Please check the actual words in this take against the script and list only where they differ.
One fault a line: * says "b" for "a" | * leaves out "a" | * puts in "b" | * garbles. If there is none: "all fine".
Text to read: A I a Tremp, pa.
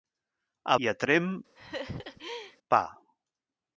all fine